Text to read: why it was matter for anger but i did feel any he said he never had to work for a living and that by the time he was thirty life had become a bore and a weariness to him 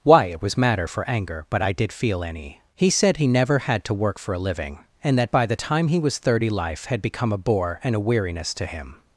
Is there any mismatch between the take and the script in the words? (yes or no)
no